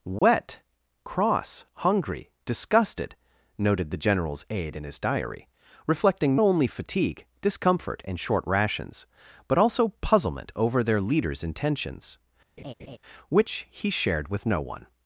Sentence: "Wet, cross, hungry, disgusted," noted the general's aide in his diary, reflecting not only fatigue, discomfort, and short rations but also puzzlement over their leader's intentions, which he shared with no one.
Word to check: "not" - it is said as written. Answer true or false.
false